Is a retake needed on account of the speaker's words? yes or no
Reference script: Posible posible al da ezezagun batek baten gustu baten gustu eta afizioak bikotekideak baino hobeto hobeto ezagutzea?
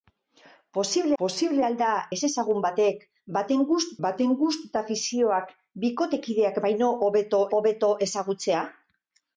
no